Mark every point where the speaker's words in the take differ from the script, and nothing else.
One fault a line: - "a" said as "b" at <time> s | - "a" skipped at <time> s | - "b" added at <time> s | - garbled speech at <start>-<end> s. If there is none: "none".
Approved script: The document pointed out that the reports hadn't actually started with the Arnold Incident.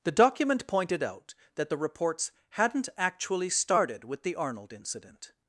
none